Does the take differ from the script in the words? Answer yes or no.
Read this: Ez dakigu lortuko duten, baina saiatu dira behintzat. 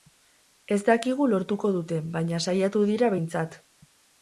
no